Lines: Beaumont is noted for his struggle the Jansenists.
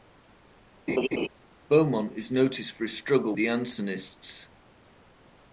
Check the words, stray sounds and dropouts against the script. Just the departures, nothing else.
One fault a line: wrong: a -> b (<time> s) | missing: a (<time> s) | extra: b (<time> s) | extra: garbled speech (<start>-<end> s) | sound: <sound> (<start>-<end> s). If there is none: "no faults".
sound: laugh (0.9-1.3 s)